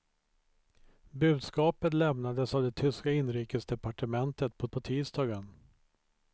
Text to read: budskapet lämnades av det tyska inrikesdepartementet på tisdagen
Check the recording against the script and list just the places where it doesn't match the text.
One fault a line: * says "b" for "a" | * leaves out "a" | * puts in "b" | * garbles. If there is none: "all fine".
* puts in "på"